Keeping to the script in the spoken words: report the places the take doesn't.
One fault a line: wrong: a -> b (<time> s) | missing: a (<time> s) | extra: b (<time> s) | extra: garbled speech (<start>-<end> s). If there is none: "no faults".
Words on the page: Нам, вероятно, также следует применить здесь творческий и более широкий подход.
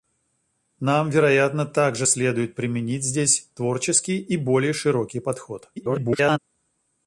extra: garbled speech (5.8-6.4 s)